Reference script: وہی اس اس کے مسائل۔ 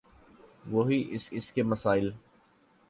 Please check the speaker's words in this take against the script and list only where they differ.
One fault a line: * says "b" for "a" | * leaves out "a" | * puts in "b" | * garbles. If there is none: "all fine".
all fine